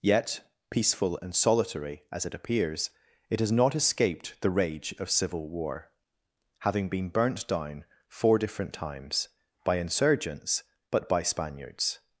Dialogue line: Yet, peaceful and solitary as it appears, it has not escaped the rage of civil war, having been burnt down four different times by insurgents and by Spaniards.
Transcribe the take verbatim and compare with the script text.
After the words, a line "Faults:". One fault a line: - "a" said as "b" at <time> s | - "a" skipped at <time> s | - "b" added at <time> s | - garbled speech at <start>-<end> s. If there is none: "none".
Yet, peaceful and solitary as it appears, it has not escaped the rage of civil war, having been burnt down four different times by insurgents but by Spaniards.
Faults:
- "and" said as "but" at 10.9 s